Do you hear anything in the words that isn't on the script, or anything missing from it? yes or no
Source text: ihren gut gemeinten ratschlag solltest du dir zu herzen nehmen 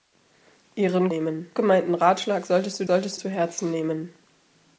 yes